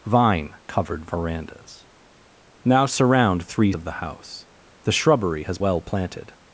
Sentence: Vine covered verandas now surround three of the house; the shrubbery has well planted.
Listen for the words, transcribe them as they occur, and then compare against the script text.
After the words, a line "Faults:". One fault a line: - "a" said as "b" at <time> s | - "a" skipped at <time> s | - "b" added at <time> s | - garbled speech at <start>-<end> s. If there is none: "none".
Vine covered verandas now surround three of the house; the shrubbery has well planted.
Faults:
none